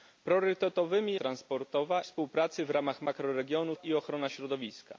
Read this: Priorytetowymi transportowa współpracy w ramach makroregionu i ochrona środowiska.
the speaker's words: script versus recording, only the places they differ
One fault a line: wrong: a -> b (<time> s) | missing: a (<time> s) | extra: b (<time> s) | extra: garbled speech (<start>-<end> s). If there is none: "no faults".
no faults